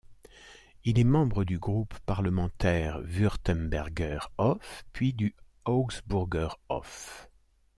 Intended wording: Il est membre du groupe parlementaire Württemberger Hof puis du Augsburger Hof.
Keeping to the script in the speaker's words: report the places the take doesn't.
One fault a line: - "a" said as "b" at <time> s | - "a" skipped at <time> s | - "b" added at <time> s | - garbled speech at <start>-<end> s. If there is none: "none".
none